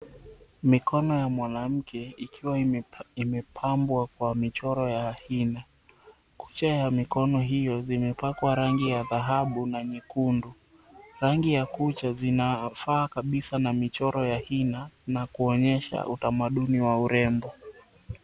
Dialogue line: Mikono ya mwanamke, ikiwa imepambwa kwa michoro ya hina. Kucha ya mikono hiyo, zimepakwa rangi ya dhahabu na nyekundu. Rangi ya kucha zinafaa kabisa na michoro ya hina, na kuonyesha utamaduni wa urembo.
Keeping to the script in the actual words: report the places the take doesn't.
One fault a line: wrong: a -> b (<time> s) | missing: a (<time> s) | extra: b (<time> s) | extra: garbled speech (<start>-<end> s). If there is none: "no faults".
no faults